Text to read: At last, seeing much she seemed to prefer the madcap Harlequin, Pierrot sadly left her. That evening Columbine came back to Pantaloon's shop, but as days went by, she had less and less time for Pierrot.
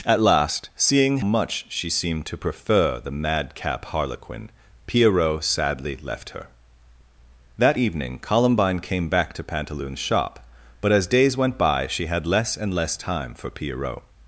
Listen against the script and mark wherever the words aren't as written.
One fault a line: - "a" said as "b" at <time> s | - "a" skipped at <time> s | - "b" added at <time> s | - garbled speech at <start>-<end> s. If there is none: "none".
none